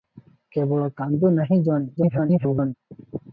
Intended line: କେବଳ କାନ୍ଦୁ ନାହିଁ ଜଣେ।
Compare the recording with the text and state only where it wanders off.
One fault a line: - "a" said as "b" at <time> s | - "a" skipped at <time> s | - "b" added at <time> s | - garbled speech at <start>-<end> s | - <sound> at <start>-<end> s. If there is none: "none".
- garbled speech at 2.0-2.7 s